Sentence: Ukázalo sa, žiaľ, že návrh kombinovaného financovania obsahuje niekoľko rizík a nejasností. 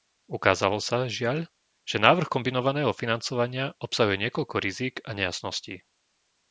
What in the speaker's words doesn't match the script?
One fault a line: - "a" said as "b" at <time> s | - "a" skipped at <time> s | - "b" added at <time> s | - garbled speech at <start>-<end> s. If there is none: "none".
none